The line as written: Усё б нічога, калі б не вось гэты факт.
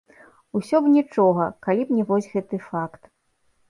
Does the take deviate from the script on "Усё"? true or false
false